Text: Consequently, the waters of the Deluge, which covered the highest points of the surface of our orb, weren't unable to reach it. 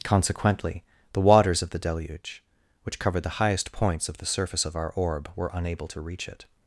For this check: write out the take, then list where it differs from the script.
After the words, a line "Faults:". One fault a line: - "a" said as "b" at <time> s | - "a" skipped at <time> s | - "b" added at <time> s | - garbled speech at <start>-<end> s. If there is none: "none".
Consequently, the waters of the Deluge, which covered the highest points of the surface of our orb, were unable to reach it.
Faults:
- "weren't" said as "were" at 5.4 s